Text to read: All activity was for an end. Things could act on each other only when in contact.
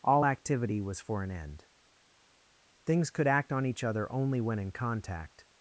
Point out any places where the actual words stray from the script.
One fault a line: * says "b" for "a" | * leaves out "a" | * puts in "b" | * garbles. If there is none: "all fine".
all fine